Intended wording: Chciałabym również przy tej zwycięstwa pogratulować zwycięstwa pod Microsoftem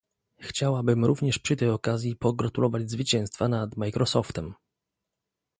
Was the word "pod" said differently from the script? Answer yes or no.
yes